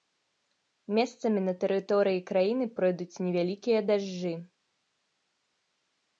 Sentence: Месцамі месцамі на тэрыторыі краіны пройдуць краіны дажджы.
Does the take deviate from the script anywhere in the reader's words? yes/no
yes